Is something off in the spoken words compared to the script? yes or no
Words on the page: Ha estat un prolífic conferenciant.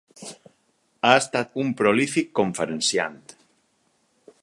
no